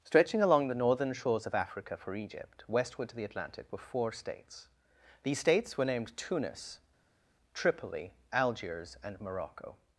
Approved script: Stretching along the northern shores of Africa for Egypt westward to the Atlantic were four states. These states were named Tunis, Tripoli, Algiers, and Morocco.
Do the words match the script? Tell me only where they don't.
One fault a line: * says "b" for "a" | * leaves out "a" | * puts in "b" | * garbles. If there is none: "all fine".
all fine